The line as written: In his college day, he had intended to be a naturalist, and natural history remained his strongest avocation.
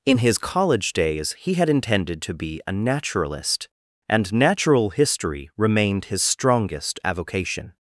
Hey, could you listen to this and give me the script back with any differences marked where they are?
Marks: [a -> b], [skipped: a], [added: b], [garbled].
In his college [day, -> days] he had intended to be a naturalist, and natural history remained his strongest avocation.